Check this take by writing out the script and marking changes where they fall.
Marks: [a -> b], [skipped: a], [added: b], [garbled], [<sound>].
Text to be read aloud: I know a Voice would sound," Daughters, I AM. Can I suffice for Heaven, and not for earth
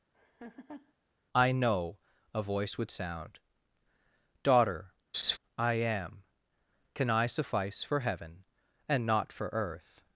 [laugh] I know a Voice would sound," [Daughters, -> Daughter] [laugh] I AM. Can I suffice for Heaven, and not for earth